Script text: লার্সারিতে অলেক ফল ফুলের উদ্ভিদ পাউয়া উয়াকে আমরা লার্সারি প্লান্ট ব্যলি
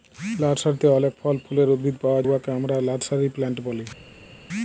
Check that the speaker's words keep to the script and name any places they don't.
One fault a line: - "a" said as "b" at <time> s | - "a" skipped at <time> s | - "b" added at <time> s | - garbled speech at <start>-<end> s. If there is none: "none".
none